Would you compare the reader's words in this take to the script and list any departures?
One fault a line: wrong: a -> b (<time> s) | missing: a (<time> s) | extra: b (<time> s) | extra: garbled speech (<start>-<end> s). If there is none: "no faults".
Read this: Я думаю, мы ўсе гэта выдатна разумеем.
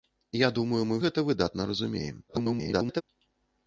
missing: ўсе (0.9 s)
extra: garbled speech (2.3-3.0 s)